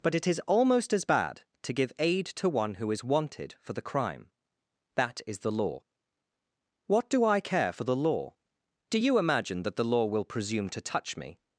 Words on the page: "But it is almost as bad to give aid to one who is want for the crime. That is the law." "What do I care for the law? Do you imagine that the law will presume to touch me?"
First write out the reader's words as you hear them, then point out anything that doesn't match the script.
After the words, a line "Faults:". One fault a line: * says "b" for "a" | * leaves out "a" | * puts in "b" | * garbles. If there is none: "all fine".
"But it is almost as bad to give aid to one who is wanted for the crime. That is the law." "What do I care for the law? Do you imagine that the law will presume to touch me?"
Faults:
* says "wanted" for "want"